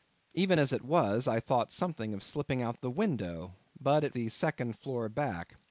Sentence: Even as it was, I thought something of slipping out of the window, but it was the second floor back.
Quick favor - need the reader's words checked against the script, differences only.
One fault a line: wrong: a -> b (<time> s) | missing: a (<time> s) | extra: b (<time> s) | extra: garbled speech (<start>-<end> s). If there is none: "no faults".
missing: was (4.1 s)